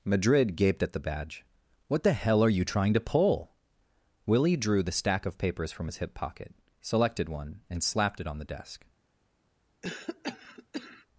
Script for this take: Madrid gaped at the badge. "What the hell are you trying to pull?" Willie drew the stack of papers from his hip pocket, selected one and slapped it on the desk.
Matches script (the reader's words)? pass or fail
pass